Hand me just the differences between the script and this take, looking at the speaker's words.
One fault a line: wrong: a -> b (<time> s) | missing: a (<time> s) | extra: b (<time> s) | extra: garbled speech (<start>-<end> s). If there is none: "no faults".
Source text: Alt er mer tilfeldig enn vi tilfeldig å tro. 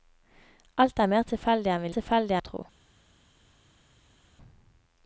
no faults